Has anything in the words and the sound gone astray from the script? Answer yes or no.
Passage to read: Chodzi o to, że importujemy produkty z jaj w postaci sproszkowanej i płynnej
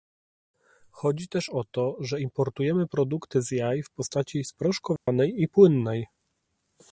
yes